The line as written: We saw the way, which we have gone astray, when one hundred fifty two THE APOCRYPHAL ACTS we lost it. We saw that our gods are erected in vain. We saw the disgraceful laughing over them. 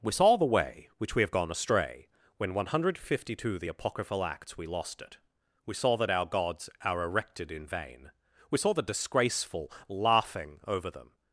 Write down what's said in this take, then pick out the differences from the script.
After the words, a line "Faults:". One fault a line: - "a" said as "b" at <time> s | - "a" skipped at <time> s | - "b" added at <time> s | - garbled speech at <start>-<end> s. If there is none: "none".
We saw the way, which we have gone astray, when one hundred fifty two THE APOCRYPHAL ACTS we lost it. We saw that our gods are erected in vain. We saw the disgraceful laughing over them.
Faults:
none